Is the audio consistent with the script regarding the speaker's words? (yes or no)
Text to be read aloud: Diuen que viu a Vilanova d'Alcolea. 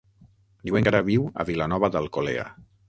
no